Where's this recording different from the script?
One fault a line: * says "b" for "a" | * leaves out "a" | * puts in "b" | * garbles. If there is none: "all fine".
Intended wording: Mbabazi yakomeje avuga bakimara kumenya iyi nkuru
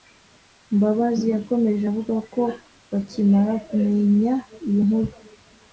* puts in "ko"